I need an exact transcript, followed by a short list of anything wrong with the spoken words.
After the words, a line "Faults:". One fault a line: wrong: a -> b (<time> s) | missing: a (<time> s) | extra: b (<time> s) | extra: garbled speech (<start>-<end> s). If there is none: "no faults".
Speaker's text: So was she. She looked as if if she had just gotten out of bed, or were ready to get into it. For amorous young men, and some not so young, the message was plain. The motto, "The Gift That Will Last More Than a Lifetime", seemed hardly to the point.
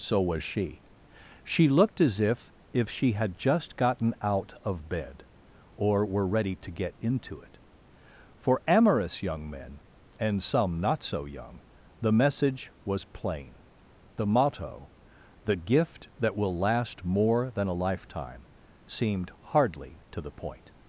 So was she. She looked as if if she had just gotten out of bed, or were ready to get into it. For amorous young men, and some not so young, the message was plain. The motto, "The Gift That Will Last More Than a Lifetime", seemed hardly to the point.
Faults:
no faults